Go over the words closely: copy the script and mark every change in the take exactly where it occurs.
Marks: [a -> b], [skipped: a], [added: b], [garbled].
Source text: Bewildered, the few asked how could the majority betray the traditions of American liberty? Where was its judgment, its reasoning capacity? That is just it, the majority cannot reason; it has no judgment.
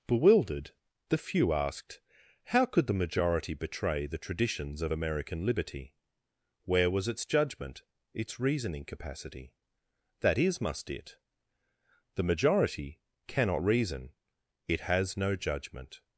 Bewildered, the few asked how could the majority betray the traditions of American liberty? Where was its judgment, its reasoning capacity? That is [just -> must] it, the majority cannot reason; it has no judgment.